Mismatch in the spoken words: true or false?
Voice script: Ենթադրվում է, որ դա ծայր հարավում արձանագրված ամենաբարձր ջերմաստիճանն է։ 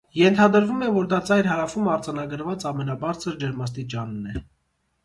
false